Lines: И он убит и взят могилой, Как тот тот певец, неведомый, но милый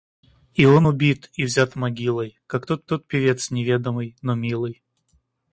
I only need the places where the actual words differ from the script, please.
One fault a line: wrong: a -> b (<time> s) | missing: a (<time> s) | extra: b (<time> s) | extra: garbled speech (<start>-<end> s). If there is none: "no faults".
no faults